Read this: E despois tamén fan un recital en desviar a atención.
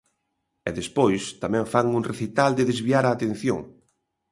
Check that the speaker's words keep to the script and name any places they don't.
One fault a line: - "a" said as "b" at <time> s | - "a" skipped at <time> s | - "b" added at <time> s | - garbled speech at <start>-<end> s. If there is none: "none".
- "en" said as "de" at 2.5 s